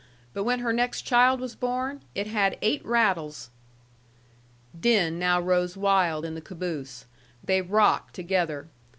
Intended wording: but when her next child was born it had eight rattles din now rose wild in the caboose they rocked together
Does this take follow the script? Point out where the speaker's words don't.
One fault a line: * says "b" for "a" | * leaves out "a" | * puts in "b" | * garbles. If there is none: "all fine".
all fine